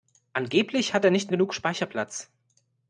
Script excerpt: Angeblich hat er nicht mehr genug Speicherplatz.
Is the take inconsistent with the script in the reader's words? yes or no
yes